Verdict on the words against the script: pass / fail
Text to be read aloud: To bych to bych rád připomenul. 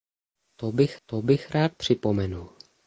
pass